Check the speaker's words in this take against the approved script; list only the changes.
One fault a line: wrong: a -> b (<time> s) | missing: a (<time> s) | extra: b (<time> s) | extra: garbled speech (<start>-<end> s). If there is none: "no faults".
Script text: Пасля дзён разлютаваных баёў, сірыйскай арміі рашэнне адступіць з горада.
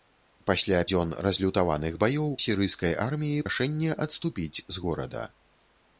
no faults